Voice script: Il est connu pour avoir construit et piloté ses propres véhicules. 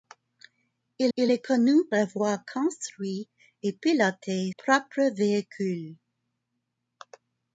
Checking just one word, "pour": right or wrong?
wrong